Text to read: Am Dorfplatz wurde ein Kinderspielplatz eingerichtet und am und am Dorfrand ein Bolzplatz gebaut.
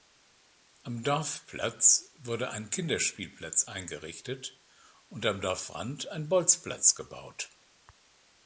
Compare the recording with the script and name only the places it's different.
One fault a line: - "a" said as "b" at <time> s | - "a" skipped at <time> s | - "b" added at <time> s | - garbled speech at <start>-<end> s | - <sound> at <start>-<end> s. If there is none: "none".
- "und am" skipped at 5.4 s